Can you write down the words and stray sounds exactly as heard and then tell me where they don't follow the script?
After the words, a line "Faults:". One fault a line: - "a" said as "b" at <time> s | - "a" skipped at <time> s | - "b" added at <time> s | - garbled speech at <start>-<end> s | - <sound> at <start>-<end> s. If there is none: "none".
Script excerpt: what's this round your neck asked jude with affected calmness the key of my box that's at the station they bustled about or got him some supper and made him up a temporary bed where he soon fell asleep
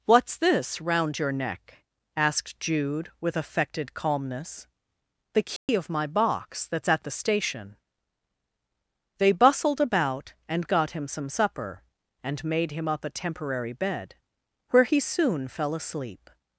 what's this round your neck asked jude with affected calmness the key of my box that's at the station they bustled about and got him some supper and made him up a temporary bed where he soon fell asleep
Faults:
- dropout at 5.6-5.7 s
- "or" said as "and" at 10.5 s